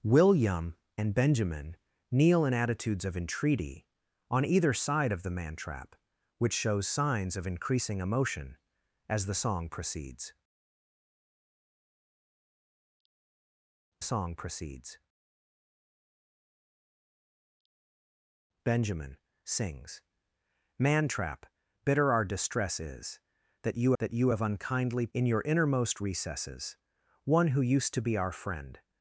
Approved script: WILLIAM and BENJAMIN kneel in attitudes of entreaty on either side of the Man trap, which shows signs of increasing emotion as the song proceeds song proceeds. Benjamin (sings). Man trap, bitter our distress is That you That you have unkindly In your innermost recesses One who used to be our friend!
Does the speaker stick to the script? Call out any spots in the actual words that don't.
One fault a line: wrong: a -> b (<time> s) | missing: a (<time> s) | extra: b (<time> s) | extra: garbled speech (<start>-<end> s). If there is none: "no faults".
no faults